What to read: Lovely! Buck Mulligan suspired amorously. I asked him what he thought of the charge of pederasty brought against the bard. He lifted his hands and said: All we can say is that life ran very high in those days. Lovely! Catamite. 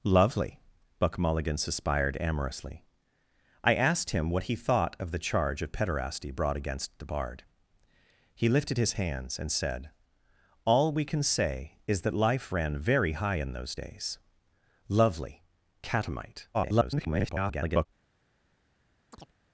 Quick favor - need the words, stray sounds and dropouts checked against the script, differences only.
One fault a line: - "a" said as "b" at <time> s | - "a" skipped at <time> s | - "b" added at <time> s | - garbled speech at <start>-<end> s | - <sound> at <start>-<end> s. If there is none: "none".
- garbled speech at 16.5-17.9 s
- chirp at 19.1-19.3 s